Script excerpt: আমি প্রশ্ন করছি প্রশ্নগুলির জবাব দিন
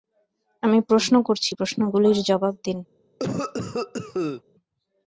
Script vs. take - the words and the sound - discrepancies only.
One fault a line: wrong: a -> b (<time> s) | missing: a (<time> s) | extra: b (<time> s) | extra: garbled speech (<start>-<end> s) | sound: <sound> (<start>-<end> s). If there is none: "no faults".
sound: cough (3.2-4.4 s)